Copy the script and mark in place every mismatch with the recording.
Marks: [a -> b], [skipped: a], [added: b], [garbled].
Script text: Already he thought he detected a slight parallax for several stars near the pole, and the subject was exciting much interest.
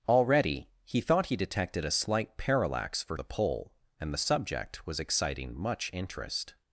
Already he thought he detected a slight parallax for [skipped: several stars near] the pole, and the subject was exciting much interest.